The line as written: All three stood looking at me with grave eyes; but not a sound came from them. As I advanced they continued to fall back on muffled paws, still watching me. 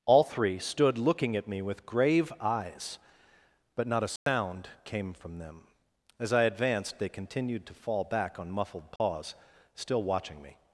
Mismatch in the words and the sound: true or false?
true